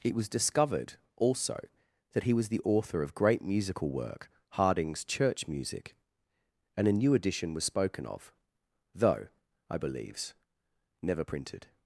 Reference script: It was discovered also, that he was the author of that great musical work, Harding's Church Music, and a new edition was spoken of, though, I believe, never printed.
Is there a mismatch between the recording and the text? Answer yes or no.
yes